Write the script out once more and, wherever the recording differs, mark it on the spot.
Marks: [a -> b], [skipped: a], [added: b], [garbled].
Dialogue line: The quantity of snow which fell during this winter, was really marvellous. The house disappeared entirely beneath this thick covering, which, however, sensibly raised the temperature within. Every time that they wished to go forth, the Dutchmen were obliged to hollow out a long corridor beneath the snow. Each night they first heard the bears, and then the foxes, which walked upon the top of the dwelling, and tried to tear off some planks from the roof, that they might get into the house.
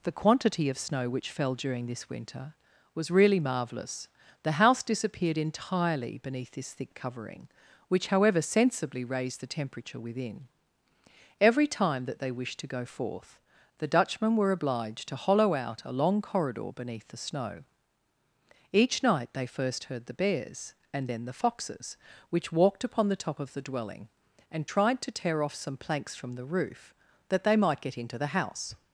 The quantity of snow which fell during this winter, was really marvellous. The house disappeared entirely beneath this thick covering, which, however, sensibly raised the temperature within. Every time that they wished to go forth, the Dutchmen were obliged to hollow out a long corridor beneath the snow. Each night they first heard the bears, and then the foxes, which walked upon the top of the dwelling, and tried to tear off some planks from the roof, that they might get into the house.